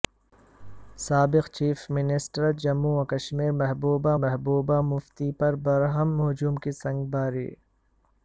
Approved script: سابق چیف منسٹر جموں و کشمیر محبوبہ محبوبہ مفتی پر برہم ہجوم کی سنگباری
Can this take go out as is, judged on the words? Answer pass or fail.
pass